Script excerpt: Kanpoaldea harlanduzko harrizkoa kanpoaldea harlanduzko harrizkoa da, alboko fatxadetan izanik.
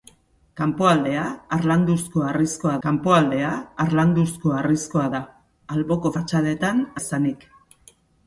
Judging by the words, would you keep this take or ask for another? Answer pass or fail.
pass